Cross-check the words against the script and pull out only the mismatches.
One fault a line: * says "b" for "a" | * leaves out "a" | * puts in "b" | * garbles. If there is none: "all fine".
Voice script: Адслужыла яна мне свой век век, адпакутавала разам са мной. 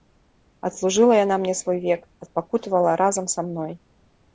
* leaves out "век"